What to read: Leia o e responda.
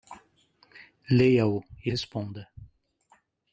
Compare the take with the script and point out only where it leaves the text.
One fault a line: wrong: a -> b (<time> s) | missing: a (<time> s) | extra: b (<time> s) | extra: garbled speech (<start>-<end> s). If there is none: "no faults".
no faults